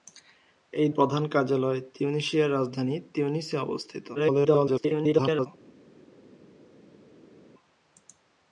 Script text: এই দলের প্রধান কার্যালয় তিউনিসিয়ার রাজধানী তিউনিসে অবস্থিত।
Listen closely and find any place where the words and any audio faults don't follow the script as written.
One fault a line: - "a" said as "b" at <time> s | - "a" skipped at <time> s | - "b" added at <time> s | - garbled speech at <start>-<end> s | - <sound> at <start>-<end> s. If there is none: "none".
- "দলের" skipped at 0.9 s
- garbled speech at 4.1-5.5 s